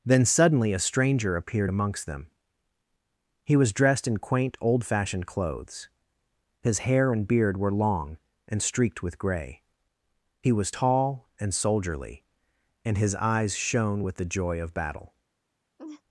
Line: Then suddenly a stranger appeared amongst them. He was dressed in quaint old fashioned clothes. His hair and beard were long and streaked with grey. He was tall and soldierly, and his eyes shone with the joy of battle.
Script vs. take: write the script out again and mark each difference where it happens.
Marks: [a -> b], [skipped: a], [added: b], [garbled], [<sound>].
Then suddenly a stranger appeared amongst them. He was dressed in quaint old fashioned clothes. His hair and beard were long and streaked with grey. He was tall and soldierly, and his eyes shone with the joy of battle. [laugh]